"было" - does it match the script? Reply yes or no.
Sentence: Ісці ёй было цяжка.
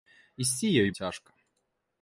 no